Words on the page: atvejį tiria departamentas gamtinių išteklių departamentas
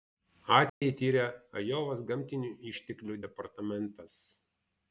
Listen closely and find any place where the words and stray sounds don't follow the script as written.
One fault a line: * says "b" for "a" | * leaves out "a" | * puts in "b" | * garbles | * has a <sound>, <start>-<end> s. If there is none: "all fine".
* has a dropout, 0.7-0.8 s
* says "ajovos" for "departamentas"